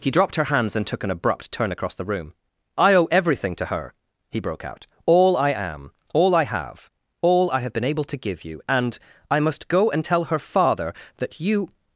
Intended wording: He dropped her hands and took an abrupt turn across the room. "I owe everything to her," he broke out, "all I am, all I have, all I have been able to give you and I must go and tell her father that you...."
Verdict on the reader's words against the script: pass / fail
pass